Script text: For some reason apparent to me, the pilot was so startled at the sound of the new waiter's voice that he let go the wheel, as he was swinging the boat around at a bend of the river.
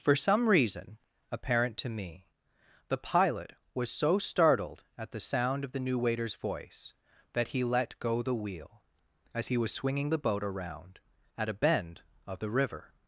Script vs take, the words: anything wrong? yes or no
no